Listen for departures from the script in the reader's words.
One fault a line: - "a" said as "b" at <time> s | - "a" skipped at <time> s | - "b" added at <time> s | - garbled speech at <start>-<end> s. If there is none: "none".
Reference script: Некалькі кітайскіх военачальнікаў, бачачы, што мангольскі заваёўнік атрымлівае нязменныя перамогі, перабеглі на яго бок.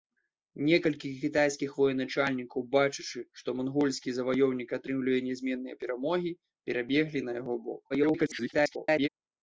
- garbled speech at 7.9-9.1 s